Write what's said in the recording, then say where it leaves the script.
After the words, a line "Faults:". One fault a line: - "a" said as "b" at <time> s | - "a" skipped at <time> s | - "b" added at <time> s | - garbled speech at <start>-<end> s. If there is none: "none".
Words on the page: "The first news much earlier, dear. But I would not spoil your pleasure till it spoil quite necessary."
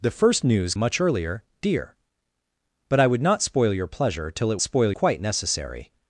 "The first news much earlier, dear. But I would not spoil your pleasure till it spoil quite necessary."
Faults:
none